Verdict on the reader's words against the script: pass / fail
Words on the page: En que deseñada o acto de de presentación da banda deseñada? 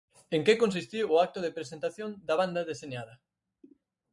fail